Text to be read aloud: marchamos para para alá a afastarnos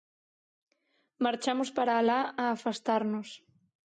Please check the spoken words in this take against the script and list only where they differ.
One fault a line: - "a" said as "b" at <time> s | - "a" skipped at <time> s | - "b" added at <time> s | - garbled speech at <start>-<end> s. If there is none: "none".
- "para" skipped at 1.9 s